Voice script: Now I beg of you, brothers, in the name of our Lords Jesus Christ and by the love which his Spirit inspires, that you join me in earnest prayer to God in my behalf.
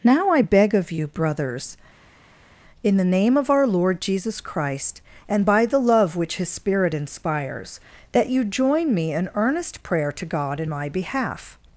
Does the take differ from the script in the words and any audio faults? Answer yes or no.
yes